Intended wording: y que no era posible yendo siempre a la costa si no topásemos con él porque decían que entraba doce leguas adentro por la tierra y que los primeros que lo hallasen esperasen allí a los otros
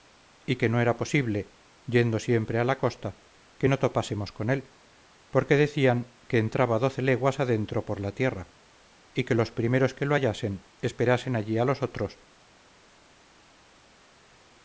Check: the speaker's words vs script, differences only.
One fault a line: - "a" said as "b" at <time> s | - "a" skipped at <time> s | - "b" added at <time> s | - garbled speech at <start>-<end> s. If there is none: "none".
- "si" said as "que" at 3.6 s